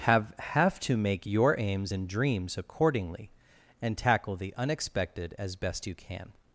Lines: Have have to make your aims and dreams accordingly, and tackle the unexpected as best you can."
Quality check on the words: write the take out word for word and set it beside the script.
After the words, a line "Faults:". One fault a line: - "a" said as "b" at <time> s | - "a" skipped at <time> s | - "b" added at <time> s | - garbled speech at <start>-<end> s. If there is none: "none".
Have have to make your aims and dreams accordingly, and tackle the unexpected as best you can."
Faults:
none